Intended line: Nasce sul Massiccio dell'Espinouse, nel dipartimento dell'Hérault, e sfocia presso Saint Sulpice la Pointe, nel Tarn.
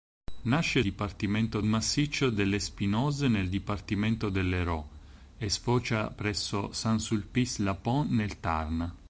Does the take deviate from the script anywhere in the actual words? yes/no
yes